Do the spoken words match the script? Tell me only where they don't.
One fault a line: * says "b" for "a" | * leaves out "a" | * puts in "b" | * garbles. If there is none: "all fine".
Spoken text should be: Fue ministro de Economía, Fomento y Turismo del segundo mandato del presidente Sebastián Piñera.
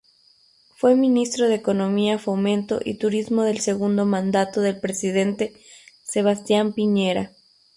all fine